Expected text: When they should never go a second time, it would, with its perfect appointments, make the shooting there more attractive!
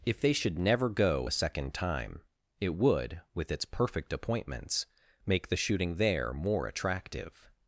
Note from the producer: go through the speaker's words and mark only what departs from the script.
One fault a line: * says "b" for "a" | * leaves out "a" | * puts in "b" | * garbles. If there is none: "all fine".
* says "If" for "When"